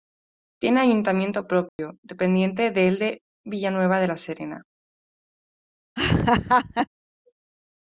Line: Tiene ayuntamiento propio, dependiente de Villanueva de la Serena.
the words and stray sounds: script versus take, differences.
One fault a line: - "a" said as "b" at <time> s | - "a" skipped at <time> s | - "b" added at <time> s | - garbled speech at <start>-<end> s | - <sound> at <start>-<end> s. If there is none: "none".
- dropout at 1.7-1.8 s
- "del" added at 2.7 s
- laugh at 6.0-6.9 s